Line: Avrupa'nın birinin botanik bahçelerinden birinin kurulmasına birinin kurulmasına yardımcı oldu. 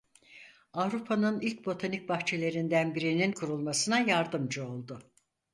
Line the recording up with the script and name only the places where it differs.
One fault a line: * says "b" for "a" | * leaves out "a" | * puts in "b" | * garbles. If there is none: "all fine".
* says "ilk" for "birinin"
* leaves out "birinin kurulmasına"